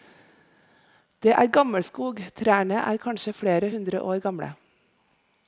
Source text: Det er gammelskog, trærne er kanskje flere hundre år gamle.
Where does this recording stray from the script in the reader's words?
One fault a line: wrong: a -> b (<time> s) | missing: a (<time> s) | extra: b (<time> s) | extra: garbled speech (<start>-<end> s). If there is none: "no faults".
no faults